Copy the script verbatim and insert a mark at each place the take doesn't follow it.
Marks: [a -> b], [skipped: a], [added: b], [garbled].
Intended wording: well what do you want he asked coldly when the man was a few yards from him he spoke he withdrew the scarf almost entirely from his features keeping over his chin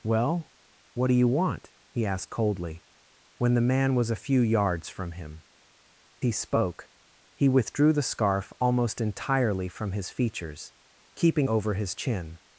well what do you want he asked coldly when the man was a few yards from him he spoke he withdrew the scarf almost entirely from his features keeping over his chin